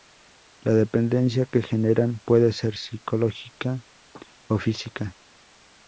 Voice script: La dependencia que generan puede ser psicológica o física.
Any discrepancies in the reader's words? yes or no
no